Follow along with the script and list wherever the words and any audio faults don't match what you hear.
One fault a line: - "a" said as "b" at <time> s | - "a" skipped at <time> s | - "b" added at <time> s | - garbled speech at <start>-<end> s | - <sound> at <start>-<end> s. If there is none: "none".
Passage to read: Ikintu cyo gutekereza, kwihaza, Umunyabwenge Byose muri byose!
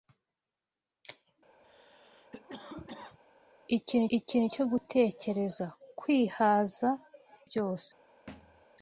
- cough at 1.6-3.2 s
- "ikintu" added at 4.2 s
- "Umunyabwenge Byose muri" skipped at 6.9 s
- thud at 8.3-8.6 s